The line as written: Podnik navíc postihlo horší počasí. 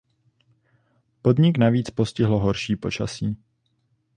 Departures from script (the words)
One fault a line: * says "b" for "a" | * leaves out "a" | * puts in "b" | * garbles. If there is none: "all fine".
all fine